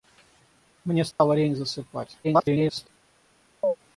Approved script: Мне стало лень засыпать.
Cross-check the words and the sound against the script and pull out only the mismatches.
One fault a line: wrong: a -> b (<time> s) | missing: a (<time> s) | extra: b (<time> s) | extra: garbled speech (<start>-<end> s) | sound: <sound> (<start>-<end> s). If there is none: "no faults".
sound: dropout (1.1-1.2 s)
extra: garbled speech (2.2-2.9 s)
sound: chirp (3.6-3.8 s)